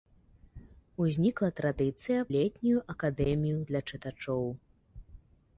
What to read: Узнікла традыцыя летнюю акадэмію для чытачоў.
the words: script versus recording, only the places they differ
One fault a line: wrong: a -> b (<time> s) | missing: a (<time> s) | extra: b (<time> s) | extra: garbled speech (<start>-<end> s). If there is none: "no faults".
no faults